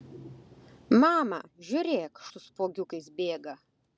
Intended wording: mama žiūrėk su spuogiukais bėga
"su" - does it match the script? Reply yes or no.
yes